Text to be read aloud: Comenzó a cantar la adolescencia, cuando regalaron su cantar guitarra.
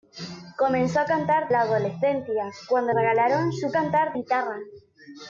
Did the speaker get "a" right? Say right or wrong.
right